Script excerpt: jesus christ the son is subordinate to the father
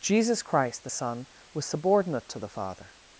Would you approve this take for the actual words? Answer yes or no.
no